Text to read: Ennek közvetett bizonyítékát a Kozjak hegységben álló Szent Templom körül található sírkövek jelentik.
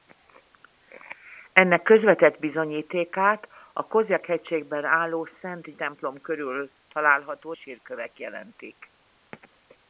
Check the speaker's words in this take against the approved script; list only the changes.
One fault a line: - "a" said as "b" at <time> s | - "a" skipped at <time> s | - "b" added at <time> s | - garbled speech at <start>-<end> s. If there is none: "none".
none